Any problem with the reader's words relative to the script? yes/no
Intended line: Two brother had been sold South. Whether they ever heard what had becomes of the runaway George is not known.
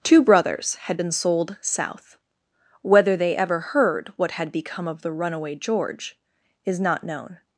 yes